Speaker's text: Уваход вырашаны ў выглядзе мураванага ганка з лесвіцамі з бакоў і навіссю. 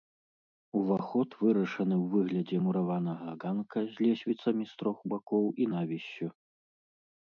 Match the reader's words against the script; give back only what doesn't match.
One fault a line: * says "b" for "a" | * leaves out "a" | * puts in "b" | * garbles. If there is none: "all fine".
* puts in "трох"